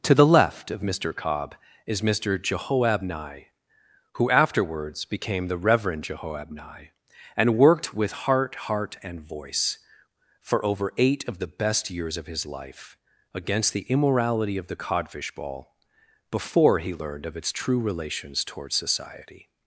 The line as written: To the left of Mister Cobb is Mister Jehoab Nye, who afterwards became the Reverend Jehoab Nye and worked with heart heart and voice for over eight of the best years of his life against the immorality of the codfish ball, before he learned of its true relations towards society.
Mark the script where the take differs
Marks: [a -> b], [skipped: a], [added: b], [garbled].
To the left of Mister Cobb is Mister Jehoab Nye, who afterwards became the Reverend Jehoab Nye and worked with heart heart and voice for over eight of the best years of his life against the immorality of the codfish ball, before he learned of its true relations towards society.